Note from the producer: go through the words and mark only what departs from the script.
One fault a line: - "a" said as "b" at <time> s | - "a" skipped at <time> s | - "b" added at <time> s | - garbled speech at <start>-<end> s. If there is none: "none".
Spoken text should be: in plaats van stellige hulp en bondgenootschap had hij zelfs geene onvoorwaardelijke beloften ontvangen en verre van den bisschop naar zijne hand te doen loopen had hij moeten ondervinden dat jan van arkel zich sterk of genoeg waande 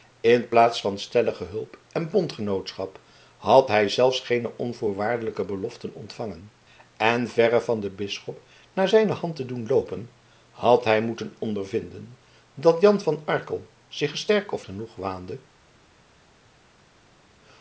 none